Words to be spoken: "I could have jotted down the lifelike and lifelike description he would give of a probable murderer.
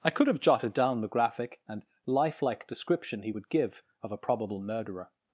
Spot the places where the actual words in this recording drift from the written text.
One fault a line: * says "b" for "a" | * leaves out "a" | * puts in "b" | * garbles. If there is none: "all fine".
* says "graphic" for "lifelike"